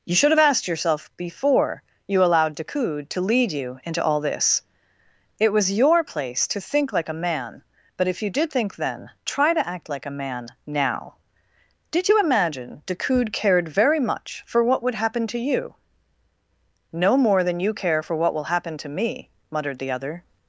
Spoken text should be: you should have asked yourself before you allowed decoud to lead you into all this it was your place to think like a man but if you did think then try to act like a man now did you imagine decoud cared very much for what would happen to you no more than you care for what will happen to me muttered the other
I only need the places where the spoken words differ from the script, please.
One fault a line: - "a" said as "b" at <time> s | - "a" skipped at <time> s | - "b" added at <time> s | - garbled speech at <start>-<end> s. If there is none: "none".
none